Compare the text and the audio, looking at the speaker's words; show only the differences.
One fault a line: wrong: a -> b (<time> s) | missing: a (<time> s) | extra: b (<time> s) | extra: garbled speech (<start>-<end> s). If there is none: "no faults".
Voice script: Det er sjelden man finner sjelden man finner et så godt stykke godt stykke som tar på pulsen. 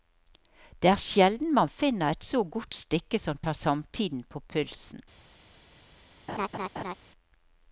missing: sjelden man finner (2.1 s)
missing: godt stykke (3.2 s)
extra: samtiden (3.6 s)